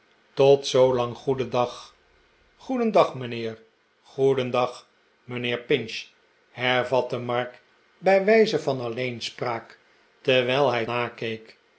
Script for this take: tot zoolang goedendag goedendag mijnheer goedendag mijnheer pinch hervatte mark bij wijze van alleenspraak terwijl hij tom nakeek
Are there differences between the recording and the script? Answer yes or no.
yes